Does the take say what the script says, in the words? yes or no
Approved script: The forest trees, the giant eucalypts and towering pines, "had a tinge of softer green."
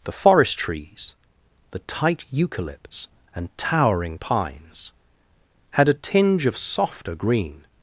no